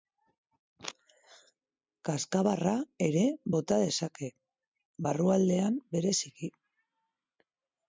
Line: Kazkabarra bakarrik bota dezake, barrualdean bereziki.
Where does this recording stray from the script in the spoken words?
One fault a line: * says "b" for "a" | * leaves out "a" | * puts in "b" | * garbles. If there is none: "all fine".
* says "ere" for "bakarrik"